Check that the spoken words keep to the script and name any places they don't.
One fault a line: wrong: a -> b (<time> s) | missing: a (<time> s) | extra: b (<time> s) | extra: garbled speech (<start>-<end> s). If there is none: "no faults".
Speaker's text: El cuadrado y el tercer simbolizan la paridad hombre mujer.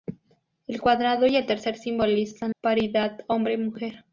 missing: la (2.5 s)